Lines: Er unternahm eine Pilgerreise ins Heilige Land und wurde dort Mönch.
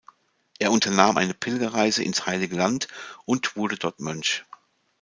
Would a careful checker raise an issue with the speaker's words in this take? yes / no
no